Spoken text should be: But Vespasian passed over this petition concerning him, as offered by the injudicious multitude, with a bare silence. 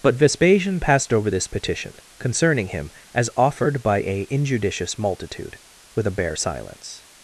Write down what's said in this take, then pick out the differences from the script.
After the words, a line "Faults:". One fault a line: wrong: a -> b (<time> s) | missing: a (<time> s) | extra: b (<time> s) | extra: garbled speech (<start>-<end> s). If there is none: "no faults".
But Vespasian passed over this petition concerning him, as offered by a injudicious multitude, with a bare silence.
Faults:
wrong: the -> a (4.0 s)